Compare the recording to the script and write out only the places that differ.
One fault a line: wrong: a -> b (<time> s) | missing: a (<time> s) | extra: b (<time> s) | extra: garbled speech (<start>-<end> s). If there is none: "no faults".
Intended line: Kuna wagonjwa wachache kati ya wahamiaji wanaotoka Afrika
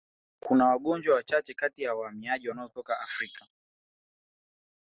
no faults